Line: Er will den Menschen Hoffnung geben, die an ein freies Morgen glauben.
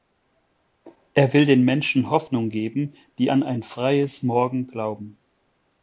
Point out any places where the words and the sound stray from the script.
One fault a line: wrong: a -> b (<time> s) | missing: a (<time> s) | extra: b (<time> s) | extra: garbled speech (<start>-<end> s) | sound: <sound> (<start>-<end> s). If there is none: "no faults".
no faults